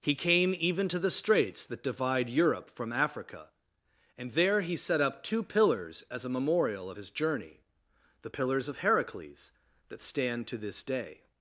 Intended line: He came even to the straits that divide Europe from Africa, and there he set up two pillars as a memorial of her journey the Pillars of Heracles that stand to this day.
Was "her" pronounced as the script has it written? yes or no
no